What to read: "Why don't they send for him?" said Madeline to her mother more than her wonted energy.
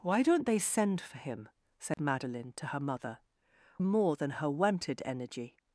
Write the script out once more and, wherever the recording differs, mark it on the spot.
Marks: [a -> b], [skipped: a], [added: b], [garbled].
"Why don't they send for him?" said Madeline to her mother more than her wonted energy.